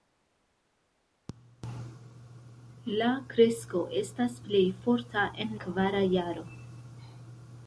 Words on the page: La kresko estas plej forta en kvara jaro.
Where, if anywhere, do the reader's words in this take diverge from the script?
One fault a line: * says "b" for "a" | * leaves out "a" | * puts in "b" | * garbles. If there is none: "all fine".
all fine